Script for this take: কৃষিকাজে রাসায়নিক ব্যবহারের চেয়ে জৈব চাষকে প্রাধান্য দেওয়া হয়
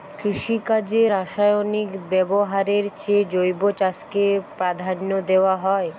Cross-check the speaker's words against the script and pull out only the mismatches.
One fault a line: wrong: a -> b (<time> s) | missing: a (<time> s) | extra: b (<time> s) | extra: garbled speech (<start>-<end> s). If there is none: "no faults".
no faults